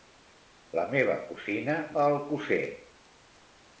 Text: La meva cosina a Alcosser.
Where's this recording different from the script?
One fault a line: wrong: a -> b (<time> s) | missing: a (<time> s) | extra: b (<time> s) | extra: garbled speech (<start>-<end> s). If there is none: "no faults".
no faults